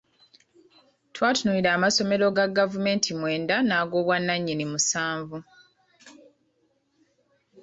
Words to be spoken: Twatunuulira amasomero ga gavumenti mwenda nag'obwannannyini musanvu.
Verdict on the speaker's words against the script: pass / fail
pass